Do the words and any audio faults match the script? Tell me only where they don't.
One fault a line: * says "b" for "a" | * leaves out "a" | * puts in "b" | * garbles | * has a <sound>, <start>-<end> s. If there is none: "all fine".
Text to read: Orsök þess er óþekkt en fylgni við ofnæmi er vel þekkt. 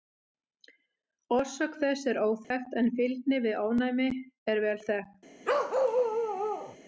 * has a dropout, 2.4-2.5 s
* has a bark, 5.4-6.8 s